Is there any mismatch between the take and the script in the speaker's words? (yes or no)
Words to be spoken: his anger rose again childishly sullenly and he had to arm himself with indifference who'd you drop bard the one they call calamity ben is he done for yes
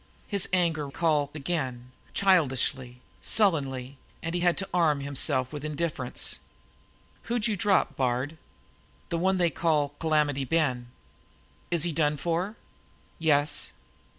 yes